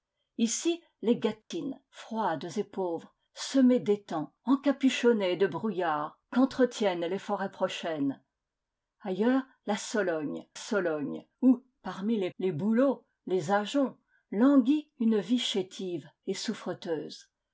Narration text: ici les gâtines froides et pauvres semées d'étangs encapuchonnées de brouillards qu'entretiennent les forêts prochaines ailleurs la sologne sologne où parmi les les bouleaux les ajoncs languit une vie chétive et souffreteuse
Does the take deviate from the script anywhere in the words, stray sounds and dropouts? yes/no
yes